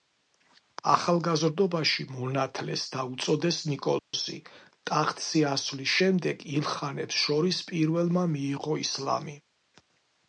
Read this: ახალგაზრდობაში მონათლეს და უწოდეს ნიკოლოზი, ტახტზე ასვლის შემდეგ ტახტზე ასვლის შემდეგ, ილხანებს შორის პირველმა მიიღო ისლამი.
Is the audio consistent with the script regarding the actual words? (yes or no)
no